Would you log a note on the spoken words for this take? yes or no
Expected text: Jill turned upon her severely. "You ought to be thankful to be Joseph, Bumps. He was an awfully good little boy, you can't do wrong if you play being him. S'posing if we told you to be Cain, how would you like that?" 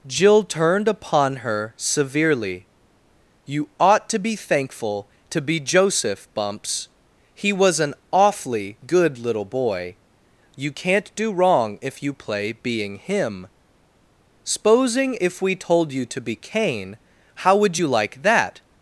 no